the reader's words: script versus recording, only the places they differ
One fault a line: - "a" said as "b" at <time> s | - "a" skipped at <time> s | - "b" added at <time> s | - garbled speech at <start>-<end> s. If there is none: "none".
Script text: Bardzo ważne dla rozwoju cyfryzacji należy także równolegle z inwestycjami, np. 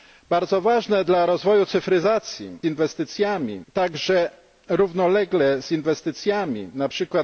- "należy" said as "inwestycjami" at 2.6 s